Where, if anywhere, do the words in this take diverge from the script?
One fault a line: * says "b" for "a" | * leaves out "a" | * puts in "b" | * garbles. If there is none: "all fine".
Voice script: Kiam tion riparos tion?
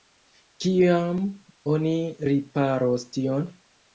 * says "oni" for "tion"